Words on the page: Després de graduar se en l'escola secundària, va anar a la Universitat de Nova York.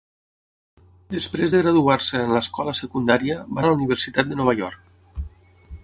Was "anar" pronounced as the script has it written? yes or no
no